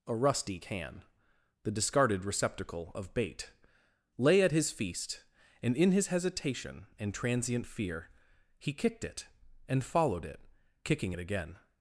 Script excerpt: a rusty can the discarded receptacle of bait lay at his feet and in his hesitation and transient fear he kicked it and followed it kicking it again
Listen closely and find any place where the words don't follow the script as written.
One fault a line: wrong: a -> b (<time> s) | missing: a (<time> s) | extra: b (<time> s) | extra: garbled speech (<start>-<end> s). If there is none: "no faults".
wrong: feet -> feast (4.7 s)